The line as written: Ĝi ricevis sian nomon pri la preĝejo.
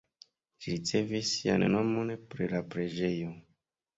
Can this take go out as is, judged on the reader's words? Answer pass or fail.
pass